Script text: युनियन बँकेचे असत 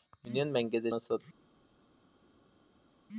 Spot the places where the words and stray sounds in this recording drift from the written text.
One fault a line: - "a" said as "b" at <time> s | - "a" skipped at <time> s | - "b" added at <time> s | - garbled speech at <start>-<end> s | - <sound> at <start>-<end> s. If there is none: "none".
none